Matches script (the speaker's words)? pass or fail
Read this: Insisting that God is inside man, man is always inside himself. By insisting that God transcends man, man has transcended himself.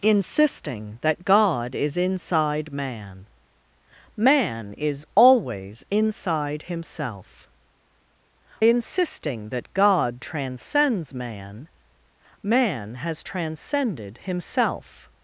fail